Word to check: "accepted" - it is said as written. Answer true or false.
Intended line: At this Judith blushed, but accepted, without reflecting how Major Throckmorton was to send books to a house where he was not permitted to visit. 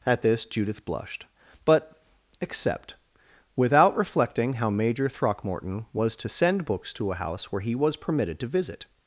false